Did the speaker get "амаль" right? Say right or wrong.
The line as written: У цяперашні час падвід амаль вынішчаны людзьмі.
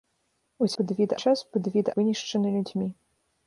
wrong